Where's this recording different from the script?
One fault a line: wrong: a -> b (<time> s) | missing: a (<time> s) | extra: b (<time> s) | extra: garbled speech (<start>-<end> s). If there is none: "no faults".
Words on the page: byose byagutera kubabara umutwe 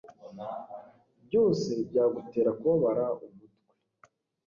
no faults